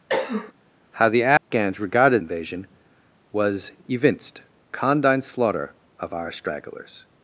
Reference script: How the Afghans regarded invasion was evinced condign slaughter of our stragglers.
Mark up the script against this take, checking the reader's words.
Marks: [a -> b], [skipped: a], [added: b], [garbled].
How the Afghans regarded invasion was evinced condign slaughter of our stragglers.